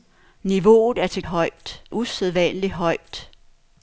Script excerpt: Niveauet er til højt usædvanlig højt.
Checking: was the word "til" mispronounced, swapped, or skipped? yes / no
no